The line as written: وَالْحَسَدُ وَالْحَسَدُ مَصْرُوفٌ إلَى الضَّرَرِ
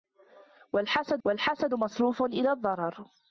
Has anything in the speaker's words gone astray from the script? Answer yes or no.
no